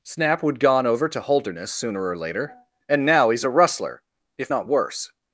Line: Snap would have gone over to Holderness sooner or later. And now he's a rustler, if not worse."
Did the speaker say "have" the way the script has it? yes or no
no